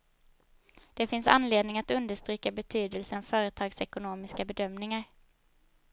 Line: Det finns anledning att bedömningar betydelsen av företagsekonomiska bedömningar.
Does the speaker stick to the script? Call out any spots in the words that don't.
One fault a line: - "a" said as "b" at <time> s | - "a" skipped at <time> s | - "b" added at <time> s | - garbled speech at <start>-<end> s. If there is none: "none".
- "bedömningar" said as "understryka" at 1.9 s